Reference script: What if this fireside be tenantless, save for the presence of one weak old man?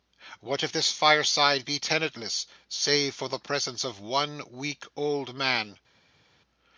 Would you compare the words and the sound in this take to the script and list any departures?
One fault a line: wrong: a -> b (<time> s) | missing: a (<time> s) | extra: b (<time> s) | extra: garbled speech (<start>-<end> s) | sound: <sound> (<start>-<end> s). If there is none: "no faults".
no faults